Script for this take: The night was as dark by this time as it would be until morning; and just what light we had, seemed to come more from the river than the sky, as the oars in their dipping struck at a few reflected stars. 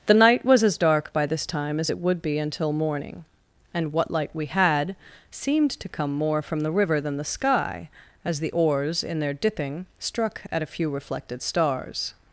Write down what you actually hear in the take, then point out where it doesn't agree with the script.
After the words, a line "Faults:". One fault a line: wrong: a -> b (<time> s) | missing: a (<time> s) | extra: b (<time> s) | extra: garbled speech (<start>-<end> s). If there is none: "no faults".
The night was as dark by this time as it would be until morning; and what light we had, seemed to come more from the river than the sky, as the oars in their dipping struck at a few reflected stars.
Faults:
missing: just (3.9 s)